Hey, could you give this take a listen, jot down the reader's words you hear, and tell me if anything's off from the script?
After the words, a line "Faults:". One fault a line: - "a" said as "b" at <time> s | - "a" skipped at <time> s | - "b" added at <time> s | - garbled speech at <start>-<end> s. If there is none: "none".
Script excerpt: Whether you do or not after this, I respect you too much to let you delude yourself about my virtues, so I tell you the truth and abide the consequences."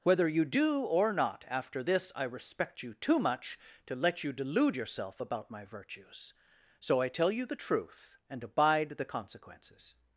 Whether you do or not after this, I respect you too much to let you delude yourself about my virtues, so I tell you the truth and abide the consequences."
Faults:
none